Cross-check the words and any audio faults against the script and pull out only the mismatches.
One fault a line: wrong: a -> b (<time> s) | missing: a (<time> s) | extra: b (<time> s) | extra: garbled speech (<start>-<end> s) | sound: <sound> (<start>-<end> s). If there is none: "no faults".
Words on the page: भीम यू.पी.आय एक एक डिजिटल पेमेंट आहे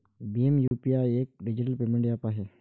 sound: dropout (0.7-0.7 s)
missing: एक (1.3 s)
extra: ऍप (2.1 s)